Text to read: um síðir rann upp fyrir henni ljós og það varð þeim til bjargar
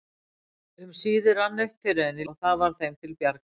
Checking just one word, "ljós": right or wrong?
wrong